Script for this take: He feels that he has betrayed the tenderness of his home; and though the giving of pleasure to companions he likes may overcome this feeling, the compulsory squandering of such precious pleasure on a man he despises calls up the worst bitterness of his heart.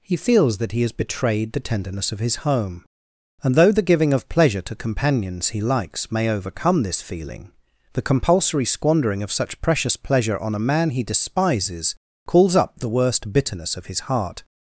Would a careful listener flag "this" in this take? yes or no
no